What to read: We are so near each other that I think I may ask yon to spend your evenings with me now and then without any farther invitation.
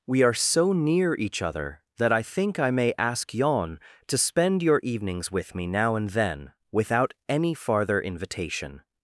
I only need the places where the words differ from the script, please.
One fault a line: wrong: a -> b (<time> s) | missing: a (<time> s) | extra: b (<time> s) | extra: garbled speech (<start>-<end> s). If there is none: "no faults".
no faults